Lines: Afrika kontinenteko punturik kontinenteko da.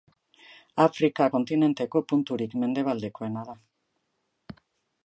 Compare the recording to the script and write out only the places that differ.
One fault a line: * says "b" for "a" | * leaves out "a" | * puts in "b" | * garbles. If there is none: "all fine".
* says "mendebaldekoena" for "kontinenteko"